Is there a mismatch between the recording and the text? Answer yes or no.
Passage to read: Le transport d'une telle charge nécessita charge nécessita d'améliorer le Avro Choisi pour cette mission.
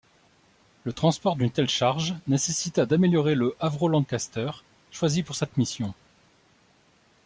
yes